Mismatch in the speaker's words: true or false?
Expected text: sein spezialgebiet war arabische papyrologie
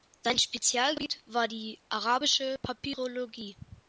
true